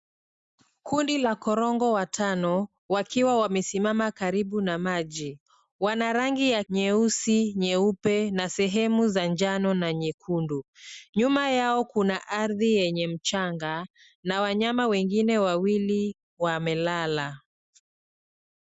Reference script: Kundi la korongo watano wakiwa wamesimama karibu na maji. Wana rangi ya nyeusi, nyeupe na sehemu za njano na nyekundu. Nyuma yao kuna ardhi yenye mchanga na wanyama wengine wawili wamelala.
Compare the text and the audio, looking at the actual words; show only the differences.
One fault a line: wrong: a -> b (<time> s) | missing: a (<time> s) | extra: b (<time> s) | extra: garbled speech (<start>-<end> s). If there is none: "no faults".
no faults